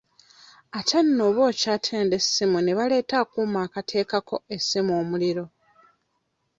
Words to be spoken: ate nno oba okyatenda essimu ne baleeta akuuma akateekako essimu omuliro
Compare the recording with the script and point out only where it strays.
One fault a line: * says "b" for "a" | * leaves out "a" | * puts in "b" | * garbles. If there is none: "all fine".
all fine